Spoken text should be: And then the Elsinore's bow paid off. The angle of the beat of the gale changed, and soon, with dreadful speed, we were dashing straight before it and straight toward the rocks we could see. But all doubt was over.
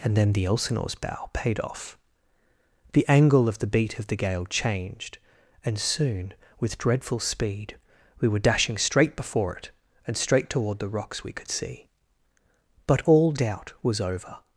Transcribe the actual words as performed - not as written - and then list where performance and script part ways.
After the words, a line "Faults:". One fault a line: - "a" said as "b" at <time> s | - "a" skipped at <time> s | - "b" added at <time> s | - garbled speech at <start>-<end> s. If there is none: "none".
And then the Elsinore's bow paid off. The angle of the beat of the gale changed, and soon, with dreadful speed, we were dashing straight before it and straight toward the rocks we could see. But all doubt was over.
Faults:
none